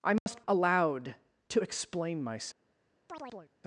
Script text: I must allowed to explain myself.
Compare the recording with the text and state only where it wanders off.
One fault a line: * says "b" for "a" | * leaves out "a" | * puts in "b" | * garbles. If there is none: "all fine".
all fine